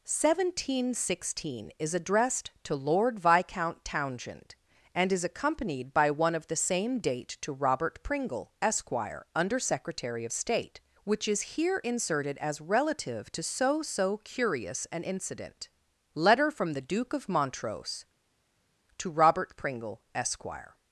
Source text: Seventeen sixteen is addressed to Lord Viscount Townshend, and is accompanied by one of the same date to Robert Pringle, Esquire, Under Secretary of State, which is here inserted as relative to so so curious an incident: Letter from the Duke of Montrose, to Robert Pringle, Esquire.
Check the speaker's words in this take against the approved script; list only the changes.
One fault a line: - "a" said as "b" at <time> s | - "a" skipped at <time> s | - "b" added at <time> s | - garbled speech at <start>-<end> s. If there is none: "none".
none